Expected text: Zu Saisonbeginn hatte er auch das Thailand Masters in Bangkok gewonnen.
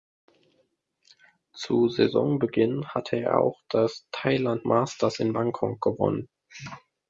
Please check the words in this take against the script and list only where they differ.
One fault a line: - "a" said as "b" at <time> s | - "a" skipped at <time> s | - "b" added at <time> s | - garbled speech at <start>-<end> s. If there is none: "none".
none